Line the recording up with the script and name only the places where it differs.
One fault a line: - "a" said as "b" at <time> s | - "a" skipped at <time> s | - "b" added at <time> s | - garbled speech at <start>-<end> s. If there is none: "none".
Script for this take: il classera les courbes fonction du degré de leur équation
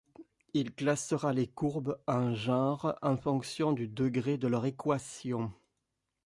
- "en genres en" added at 2.1 s